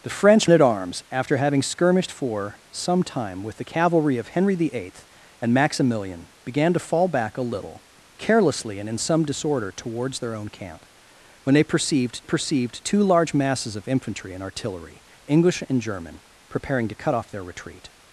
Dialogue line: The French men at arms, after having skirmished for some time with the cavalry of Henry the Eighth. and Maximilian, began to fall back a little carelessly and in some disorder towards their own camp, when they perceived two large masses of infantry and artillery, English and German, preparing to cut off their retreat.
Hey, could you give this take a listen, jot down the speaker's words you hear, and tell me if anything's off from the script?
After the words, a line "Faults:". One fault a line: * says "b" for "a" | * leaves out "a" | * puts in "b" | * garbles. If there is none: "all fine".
The French at arms, after having skirmished for some time with the cavalry of Henry the Eighth. and Maximilian, began to fall back a little carelessly and in some disorder towards their own camp, when they perceived perceived two large masses of infantry and artillery, English and German, preparing to cut off their retreat.
Faults:
* leaves out "men"
* puts in "perceived"